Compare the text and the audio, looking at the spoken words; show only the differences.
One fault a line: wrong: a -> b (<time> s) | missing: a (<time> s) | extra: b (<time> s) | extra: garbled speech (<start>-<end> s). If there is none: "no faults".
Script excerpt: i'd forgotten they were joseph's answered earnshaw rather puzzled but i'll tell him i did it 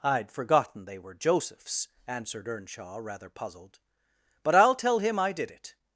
no faults